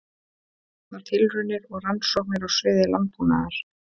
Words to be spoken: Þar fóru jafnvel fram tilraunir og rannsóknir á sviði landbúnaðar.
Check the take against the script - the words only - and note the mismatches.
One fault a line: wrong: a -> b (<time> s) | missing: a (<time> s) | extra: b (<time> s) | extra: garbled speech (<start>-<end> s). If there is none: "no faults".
missing: fóru jafnvel fram (1.0 s)